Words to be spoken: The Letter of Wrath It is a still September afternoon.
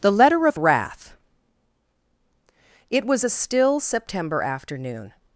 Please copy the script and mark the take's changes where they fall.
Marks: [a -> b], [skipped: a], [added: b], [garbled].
The Letter of Wrath It [is -> was] a still September afternoon.